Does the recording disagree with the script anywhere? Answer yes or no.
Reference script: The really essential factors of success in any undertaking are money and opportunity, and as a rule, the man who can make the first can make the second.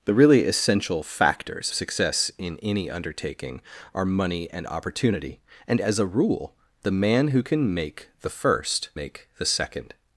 yes